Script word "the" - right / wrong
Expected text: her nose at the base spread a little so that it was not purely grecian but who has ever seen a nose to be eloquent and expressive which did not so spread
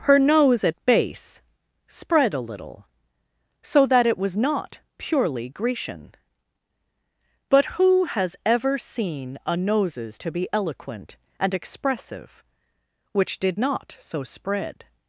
wrong